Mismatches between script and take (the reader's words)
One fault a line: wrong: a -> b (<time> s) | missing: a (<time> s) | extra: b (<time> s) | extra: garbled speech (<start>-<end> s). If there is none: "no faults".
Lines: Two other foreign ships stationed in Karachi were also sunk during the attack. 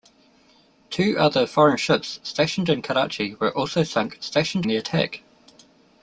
wrong: during -> stationed (4.2 s)